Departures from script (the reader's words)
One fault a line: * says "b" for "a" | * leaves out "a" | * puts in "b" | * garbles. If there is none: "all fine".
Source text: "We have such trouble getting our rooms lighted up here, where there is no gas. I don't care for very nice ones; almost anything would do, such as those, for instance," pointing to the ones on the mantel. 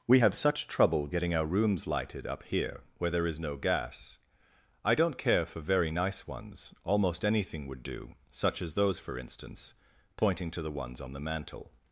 all fine